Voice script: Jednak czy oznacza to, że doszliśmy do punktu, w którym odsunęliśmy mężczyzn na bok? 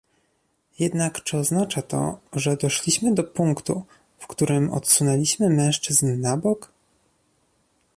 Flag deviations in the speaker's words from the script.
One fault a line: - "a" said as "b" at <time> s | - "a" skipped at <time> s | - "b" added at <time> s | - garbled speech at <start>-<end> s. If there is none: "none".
none